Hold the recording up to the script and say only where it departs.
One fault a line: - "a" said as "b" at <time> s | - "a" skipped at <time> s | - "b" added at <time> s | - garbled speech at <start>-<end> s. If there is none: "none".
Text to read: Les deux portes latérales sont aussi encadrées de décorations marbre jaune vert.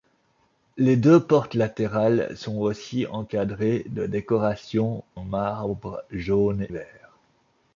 none